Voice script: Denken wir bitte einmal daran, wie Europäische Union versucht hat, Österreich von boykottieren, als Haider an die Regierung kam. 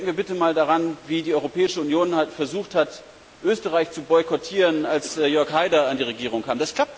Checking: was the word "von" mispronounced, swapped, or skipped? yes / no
yes